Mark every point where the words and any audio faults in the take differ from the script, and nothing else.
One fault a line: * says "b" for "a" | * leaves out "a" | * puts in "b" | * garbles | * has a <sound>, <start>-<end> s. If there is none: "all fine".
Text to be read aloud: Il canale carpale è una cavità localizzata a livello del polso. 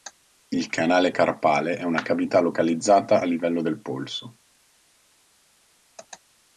all fine